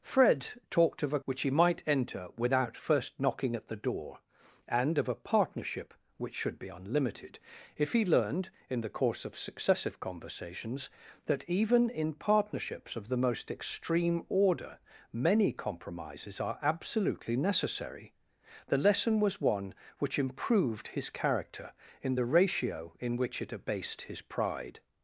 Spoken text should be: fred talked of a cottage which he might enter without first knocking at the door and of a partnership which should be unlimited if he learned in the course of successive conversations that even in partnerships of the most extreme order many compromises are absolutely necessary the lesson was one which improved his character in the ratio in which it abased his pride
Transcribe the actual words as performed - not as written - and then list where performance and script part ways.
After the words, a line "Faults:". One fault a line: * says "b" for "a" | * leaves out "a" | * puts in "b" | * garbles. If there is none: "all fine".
fred talked of a which he might enter without first knocking at the door and of a partnership which should be unlimited if he learned in the course of successive conversations that even in partnerships of the most extreme order many compromises are absolutely necessary the lesson was one which improved his character in the ratio in which it abased his pride
Faults:
* leaves out "cottage"